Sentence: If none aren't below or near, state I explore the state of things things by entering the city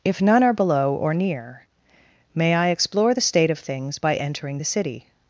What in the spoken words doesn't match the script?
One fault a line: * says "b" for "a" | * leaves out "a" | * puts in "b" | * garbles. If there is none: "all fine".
* says "are" for "aren't"
* says "may" for "state"
* leaves out "things"